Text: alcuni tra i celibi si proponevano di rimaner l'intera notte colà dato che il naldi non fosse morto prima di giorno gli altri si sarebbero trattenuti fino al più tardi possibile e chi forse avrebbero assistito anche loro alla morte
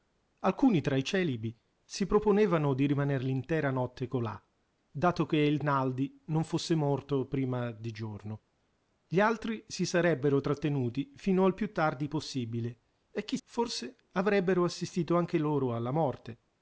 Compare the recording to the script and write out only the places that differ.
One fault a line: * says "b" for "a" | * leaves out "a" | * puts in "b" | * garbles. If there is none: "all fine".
all fine